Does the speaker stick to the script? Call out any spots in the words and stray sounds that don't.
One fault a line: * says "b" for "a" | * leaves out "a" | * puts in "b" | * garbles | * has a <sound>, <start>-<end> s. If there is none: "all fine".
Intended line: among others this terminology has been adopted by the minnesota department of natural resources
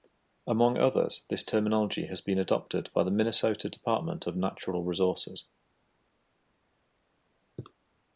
all fine